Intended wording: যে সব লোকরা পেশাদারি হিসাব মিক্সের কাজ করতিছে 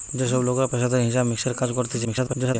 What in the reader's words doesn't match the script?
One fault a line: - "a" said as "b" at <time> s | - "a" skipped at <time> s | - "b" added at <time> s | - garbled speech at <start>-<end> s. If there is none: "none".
- garbled speech at 2.0-2.6 s